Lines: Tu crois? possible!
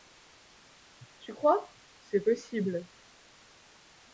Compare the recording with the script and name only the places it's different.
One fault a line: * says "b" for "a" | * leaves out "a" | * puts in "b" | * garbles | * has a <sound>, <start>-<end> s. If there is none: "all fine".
* puts in "c'est"